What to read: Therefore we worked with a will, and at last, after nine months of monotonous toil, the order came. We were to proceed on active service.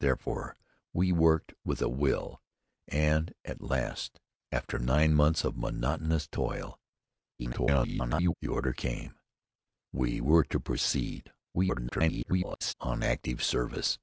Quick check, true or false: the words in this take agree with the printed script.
false